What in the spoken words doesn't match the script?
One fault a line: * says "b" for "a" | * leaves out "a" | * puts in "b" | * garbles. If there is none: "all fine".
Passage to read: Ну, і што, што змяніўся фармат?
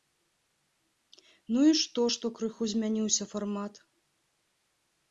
* puts in "крыху"